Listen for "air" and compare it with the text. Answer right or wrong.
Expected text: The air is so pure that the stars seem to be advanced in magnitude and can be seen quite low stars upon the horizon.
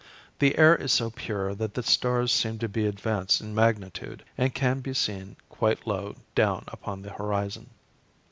right